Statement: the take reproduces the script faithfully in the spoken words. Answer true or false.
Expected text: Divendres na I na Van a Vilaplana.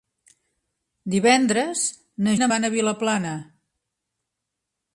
true